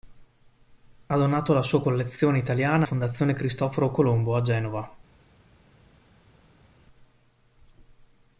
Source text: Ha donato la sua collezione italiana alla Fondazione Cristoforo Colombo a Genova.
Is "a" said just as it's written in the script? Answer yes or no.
yes